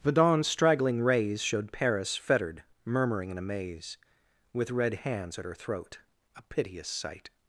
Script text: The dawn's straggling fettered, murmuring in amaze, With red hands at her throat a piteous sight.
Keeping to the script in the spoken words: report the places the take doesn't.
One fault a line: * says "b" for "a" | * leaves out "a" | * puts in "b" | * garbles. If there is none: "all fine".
* puts in "rays Showed Paris"